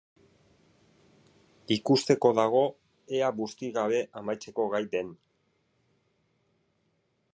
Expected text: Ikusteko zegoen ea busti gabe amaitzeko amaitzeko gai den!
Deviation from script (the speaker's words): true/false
true